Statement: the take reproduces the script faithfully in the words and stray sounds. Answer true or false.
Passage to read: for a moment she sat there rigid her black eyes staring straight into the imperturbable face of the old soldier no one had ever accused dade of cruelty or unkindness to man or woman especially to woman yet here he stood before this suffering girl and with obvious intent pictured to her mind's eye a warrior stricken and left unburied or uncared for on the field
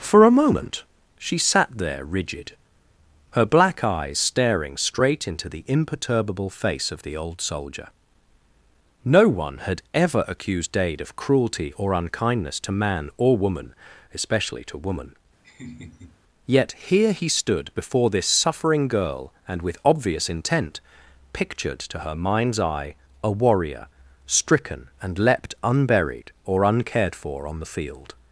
false